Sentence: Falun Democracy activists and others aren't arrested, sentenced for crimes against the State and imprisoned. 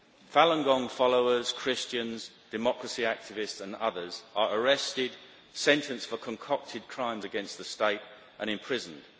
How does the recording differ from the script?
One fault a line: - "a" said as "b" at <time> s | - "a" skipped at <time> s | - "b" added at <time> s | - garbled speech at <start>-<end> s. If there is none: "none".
- "Gong followers Christians" added at 0.6 s
- "aren't" said as "are" at 4.3 s
- "concocted" added at 6.2 s